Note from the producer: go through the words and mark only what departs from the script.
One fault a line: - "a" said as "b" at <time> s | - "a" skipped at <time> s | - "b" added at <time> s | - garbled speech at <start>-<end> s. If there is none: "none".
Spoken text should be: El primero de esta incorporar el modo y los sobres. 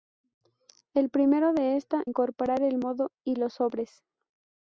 none